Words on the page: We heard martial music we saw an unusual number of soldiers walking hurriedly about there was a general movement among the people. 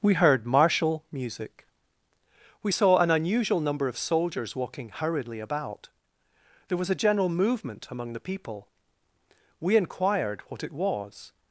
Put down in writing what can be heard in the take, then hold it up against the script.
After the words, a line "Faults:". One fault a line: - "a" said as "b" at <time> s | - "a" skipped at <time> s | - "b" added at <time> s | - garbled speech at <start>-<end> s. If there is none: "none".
We heard martial music we saw an unusual number of soldiers walking hurriedly about there was a general movement among the people. We inquired what it was
Faults:
- "We inquired what it was" added at 9.6 s